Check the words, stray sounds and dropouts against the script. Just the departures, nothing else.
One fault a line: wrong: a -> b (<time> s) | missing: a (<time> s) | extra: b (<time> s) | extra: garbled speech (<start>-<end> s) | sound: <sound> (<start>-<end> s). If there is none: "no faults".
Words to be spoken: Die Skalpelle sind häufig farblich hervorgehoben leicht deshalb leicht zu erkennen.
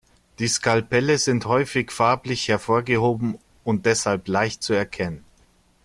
wrong: leicht -> und (3.6 s)